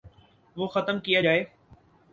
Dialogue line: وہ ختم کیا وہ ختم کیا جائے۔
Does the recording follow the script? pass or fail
fail